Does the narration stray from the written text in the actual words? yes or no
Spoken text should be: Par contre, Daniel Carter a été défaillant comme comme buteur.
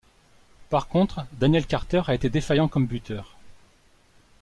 yes